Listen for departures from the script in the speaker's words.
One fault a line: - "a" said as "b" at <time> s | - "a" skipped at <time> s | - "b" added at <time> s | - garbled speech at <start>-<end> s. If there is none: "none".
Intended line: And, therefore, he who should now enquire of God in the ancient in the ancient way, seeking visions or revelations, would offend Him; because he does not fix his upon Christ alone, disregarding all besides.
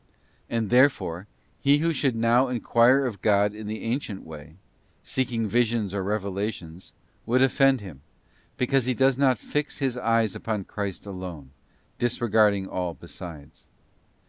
- "in the ancient" skipped at 4.2 s
- "eyes" added at 10.0 s